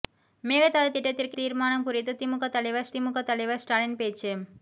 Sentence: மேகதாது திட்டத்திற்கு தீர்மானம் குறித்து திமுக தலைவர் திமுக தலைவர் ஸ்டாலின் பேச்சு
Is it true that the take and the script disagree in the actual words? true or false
false